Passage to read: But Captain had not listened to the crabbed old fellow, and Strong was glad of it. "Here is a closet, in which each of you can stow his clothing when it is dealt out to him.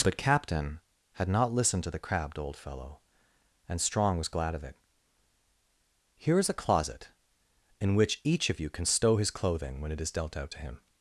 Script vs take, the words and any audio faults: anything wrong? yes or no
no